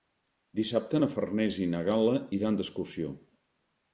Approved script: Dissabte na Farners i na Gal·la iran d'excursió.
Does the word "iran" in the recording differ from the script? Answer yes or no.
no